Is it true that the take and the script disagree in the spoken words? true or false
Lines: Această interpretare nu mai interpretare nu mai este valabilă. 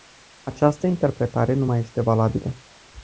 true